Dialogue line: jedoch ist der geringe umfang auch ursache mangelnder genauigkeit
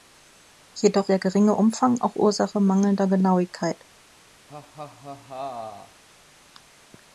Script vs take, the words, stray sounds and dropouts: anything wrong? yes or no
yes